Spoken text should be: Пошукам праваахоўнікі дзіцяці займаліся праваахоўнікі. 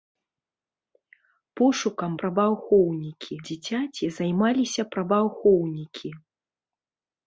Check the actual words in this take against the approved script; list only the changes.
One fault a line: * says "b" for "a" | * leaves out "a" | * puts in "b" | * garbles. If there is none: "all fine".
all fine